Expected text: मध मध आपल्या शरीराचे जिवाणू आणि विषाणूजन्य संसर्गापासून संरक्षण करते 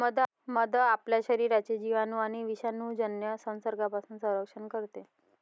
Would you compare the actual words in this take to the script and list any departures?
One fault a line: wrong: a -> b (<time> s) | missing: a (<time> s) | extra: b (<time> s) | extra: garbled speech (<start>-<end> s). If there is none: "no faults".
missing: मध (0.8 s)